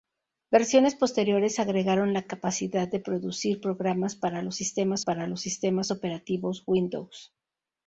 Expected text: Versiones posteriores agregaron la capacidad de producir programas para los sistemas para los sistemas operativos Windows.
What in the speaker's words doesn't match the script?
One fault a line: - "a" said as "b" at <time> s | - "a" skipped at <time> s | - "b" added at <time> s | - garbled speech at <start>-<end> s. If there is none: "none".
none